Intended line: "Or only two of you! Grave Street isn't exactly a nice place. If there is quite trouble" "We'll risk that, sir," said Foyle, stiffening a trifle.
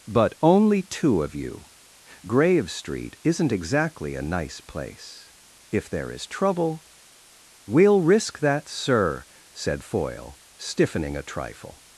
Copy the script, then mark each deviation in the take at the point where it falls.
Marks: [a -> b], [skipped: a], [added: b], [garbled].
["Or -> But] only two of you! Grave Street isn't exactly a nice place. If there is [skipped: quite] trouble" "We'll risk that, sir," said Foyle, stiffening a trifle.